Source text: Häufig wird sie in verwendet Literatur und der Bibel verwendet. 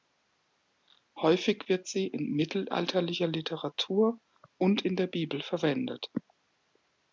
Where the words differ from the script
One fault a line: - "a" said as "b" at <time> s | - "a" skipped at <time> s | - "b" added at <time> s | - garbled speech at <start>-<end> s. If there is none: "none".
- "verwendet" said as "mittelalterlicher" at 2.3 s
- "in" added at 4.8 s